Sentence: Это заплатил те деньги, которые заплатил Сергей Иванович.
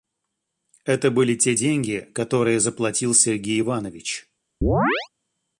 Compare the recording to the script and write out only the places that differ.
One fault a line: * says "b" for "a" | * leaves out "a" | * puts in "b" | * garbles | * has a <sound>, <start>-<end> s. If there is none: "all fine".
* says "были" for "заплатил"
* has a chirp, 4.6-5.1 s